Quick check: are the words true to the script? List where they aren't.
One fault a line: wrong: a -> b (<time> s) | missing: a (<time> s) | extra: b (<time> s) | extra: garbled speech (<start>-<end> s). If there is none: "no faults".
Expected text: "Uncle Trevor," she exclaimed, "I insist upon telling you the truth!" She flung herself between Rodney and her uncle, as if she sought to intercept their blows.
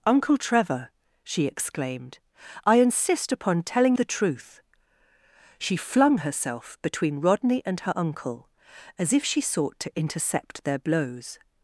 missing: you (4.0 s)